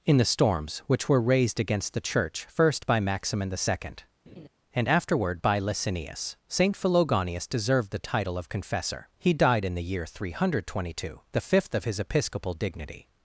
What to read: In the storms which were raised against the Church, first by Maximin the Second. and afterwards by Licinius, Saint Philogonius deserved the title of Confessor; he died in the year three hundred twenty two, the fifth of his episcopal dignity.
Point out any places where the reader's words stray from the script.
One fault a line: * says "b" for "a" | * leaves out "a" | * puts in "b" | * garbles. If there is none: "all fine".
* says "afterward" for "afterwards"